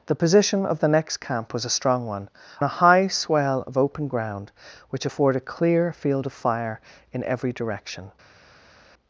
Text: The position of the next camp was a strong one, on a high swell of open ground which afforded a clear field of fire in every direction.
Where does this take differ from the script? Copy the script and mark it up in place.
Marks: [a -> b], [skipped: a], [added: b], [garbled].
The position of the next camp was a strong one, [skipped: on] a high swell of open ground which afforded a clear field of fire in every direction.